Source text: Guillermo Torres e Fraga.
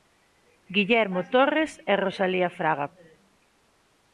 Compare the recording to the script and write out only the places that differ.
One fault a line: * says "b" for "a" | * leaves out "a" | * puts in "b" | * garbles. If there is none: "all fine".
* puts in "Rosalía"